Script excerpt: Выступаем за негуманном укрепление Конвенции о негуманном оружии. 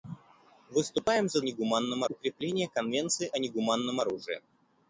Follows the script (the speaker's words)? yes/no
yes